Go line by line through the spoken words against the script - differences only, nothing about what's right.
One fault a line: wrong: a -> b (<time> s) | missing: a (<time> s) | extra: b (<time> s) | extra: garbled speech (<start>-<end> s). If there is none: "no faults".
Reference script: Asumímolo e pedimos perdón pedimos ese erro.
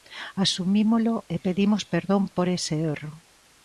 wrong: pedimos -> por (2.4 s)